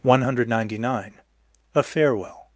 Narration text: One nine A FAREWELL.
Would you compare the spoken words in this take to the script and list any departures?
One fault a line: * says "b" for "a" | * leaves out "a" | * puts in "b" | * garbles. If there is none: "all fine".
* puts in "hundred ninety"